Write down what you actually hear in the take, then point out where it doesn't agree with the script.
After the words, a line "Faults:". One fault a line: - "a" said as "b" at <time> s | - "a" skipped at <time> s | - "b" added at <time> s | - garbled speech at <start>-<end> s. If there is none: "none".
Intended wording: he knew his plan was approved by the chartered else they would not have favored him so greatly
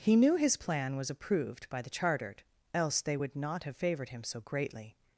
he knew his plan was approved by the chartered else they would not have favored him so greatly
Faults:
none